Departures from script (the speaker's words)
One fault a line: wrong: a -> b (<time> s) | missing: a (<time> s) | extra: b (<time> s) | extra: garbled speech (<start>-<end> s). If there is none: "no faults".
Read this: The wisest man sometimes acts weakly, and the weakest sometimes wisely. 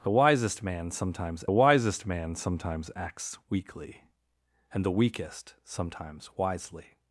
extra: wisest man sometimes (1.5 s)